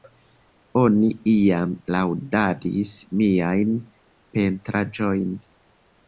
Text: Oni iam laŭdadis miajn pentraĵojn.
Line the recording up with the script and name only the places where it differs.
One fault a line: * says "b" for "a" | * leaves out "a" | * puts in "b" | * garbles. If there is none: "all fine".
all fine